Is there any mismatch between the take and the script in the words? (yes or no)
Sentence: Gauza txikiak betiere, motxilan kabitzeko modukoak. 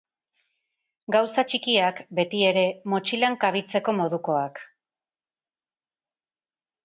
no